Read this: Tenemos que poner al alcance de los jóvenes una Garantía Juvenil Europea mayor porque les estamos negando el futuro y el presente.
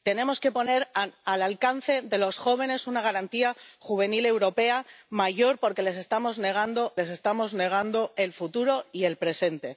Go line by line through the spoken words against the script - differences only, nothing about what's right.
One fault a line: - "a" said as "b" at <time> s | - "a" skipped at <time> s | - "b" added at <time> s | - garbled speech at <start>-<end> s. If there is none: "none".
- "les estamos negando" added at 7.0 s